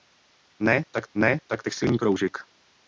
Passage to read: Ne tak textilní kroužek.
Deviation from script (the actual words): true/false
true